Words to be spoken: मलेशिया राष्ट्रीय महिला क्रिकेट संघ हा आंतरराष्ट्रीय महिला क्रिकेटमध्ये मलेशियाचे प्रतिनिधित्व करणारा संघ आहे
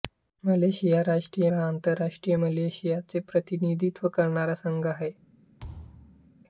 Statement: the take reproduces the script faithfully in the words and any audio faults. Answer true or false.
false